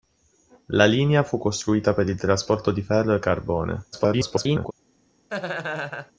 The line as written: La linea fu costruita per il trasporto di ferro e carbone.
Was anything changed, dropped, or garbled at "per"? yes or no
no